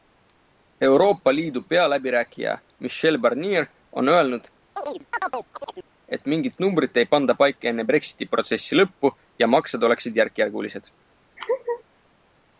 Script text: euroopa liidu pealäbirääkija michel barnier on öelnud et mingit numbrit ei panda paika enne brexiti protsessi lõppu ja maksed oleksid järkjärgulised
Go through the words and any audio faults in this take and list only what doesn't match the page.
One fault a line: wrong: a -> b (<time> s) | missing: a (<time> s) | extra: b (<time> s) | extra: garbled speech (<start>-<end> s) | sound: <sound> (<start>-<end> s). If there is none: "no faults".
sound: chirp (4.8-5.9 s)
sound: laugh (11.4-11.8 s)